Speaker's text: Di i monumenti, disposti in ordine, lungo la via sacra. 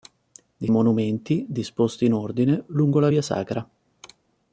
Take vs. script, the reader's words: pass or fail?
pass